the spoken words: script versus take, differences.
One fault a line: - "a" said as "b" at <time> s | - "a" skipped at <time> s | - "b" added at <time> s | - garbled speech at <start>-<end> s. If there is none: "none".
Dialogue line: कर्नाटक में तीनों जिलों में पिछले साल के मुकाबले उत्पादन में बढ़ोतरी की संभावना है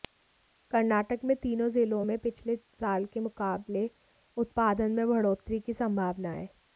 none